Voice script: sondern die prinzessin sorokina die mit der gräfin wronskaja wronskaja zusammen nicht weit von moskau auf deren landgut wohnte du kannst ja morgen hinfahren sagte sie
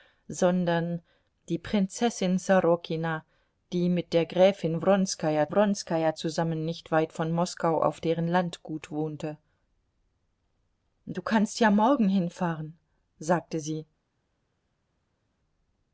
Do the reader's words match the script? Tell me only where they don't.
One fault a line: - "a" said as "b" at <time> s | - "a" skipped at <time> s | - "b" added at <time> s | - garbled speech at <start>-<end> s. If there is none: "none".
none